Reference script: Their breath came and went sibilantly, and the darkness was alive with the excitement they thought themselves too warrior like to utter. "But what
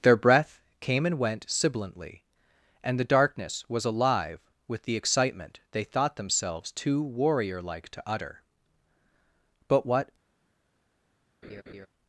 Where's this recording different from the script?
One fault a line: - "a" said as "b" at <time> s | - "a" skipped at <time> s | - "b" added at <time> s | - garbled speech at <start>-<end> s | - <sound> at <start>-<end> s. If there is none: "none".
- laugh at 11.4-11.9 s